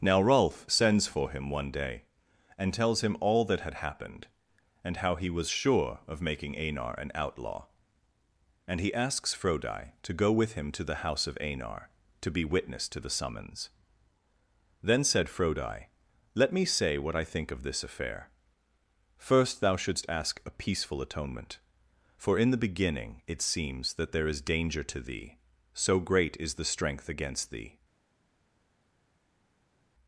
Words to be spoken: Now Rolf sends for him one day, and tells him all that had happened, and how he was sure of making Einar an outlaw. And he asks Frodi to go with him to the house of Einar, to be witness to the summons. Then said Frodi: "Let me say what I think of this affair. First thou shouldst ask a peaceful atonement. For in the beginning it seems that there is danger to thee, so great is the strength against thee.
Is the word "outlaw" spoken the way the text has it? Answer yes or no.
yes